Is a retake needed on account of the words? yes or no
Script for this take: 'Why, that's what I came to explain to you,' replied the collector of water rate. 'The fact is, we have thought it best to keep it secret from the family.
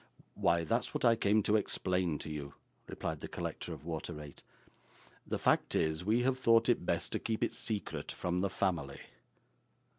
no